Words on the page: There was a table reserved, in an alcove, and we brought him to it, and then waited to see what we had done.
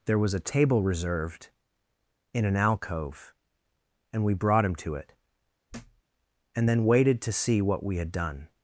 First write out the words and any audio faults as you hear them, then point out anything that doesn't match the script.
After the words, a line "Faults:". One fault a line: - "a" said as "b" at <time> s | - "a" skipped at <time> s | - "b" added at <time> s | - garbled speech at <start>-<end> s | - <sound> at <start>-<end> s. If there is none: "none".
There was a table reserved, in an alcove, and we brought him to it, and then waited to see what we had done.
Faults:
- thud at 5.7-6.0 s